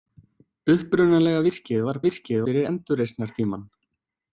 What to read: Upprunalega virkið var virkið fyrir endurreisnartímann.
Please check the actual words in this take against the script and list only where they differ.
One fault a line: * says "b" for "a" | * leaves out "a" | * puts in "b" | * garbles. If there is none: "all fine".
all fine